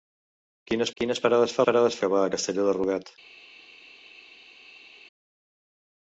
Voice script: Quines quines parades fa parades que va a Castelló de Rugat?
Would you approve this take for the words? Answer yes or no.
yes